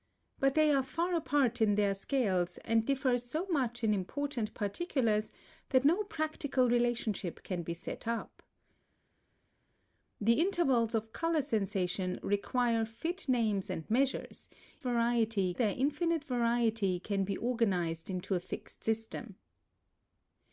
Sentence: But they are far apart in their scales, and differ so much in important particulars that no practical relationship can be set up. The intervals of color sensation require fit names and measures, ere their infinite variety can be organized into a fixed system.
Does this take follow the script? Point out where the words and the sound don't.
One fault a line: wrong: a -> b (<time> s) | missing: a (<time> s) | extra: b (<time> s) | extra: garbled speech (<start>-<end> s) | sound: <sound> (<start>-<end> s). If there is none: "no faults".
wrong: ere -> variety (14.8 s)